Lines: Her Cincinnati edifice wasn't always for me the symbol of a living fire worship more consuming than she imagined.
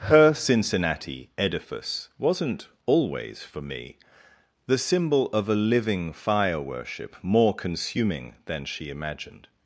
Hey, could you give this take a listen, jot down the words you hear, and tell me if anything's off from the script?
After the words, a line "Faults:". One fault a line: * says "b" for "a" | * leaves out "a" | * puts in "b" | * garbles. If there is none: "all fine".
Her Cincinnati edifice wasn't always for me the symbol of a living fire worship more consuming than she imagined.
Faults:
all fine